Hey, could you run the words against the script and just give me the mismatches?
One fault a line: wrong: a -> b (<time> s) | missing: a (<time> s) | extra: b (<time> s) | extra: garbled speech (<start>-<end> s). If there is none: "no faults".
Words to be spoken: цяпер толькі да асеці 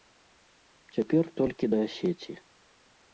no faults